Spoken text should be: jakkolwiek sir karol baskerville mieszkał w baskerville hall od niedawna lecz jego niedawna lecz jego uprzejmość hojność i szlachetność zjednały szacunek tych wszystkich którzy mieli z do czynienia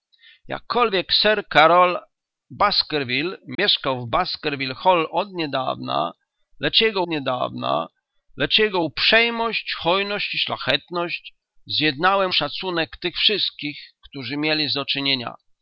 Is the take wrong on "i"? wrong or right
right